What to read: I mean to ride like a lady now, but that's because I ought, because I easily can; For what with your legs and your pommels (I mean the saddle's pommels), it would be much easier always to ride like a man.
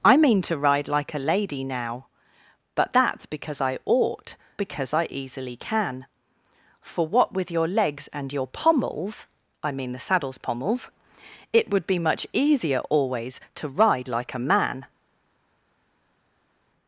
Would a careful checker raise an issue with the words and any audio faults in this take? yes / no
no